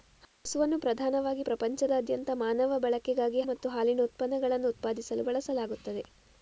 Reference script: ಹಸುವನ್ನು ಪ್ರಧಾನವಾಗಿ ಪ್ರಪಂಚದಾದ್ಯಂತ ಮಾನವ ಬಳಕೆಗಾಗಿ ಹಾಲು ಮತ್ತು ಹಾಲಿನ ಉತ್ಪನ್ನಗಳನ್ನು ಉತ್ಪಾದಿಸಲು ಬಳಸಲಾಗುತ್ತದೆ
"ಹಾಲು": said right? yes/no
no